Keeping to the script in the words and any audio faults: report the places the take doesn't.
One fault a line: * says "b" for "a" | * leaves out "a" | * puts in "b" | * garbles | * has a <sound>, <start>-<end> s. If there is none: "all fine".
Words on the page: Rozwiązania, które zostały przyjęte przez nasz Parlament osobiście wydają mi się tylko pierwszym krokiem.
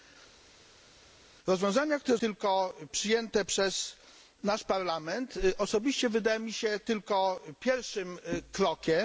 * says "tylko" for "zostały"